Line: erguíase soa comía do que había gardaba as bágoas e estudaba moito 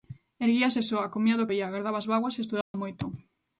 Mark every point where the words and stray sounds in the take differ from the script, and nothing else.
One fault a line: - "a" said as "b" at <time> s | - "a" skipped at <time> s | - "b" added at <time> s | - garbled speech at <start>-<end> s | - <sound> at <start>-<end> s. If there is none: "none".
- "que" skipped at 1.5 s
- dropout at 2.6-2.7 s